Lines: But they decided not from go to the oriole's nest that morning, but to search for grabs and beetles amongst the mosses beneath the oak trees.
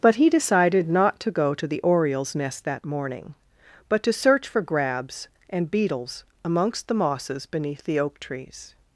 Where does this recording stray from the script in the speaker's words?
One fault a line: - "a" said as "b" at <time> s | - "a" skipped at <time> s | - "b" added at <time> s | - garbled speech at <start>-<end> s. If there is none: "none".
- "they" said as "he" at 0.1 s
- "from" said as "to" at 1.2 s